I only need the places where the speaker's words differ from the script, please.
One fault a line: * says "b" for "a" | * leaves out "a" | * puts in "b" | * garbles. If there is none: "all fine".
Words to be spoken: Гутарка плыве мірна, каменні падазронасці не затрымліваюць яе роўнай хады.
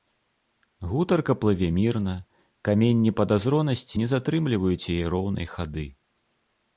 all fine